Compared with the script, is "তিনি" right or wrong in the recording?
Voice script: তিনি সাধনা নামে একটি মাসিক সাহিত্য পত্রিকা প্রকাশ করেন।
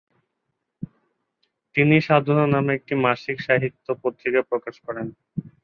right